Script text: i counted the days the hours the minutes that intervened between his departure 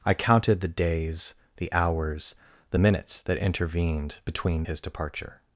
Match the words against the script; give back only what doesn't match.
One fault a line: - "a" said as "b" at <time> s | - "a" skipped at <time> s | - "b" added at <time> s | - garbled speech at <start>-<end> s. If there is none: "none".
none